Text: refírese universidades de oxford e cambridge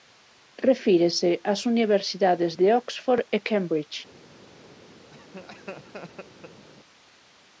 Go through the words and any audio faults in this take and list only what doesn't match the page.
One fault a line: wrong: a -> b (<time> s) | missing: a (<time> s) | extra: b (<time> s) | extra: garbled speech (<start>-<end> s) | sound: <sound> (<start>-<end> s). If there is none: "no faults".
extra: ás (1.5 s)
sound: laugh (5.1-6.7 s)